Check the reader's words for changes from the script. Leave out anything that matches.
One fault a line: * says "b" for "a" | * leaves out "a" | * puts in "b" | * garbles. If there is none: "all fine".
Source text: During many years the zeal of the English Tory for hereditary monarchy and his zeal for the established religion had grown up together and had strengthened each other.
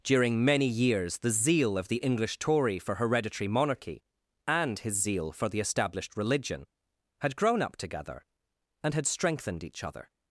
all fine